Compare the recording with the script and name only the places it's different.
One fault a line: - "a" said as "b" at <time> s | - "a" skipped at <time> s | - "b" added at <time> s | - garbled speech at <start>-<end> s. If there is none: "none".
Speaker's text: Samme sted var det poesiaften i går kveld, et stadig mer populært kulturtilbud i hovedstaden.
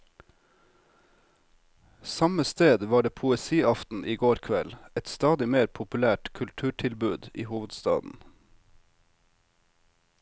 none